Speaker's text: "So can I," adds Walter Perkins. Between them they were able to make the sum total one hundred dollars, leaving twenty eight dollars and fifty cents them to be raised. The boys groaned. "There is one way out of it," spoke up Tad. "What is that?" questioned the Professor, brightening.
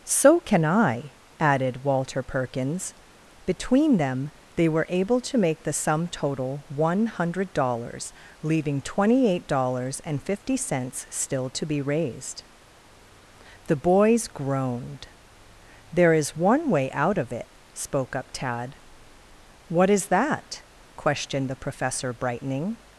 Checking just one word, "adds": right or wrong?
wrong